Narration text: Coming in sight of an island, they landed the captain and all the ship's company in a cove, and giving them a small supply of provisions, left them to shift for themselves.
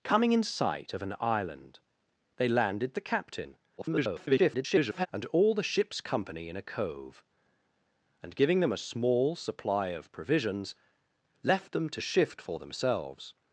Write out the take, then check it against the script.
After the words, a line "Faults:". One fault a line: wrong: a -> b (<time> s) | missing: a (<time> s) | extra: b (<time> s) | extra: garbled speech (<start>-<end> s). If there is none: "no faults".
Coming in sight of an island, they landed the captain [garbled] and all the ship's company in a cove, and giving them a small supply of provisions, left them to shift for themselves.
Faults:
extra: garbled speech (3.8-5.1 s)